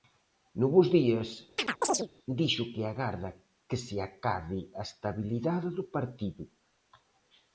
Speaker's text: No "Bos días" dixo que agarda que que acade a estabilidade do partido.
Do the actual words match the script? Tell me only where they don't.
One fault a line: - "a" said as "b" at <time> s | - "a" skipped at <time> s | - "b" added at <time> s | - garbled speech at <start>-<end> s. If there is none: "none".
- "que" said as "se" at 3.9 s